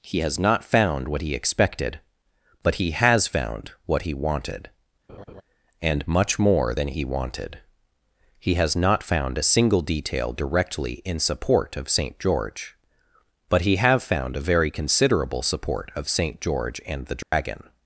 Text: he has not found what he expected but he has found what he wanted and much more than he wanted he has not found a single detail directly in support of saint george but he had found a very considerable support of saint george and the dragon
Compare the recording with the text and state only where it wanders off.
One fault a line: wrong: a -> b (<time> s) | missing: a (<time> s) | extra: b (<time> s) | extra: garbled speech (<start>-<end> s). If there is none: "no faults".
wrong: had -> have (13.8 s)